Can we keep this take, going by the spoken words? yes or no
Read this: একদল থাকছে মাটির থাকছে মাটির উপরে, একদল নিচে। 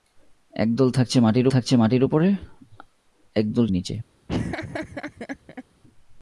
yes